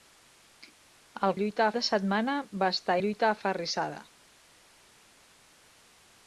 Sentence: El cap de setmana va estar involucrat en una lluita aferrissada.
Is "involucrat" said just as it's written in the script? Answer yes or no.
no